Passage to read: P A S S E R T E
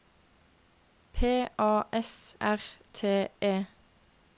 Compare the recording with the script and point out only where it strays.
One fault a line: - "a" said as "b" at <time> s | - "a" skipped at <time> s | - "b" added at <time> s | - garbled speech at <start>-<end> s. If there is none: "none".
- "S E" skipped at 2.4 s